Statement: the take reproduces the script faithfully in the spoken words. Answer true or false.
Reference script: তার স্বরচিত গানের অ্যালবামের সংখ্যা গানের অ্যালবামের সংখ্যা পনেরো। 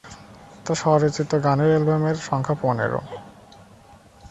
false